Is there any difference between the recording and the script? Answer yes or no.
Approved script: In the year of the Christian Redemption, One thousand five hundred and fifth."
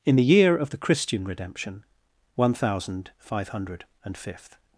no